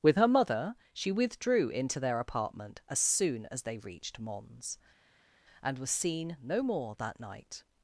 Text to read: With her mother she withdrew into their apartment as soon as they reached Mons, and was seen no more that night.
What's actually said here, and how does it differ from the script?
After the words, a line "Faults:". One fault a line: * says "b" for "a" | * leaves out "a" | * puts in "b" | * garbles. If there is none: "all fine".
With her mother she withdrew into their apartment as soon as they reached Mons, and was seen no more that night.
Faults:
all fine